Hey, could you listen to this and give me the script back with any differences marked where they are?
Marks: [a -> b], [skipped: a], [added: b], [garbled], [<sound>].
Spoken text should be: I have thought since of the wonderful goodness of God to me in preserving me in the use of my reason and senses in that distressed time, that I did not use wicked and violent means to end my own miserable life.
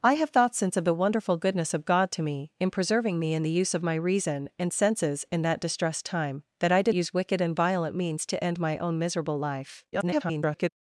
I have thought since of the wonderful goodness of God to me in preserving me in the use of my reason and senses in that distressed time, that I did [skipped: not] use wicked and violent means to end my own miserable life. [garbled]